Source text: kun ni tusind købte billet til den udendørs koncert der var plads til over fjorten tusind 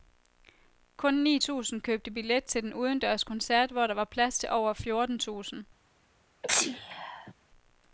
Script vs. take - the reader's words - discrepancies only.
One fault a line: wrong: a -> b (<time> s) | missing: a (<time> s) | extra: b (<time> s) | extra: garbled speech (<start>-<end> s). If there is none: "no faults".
extra: hvor (3.7 s)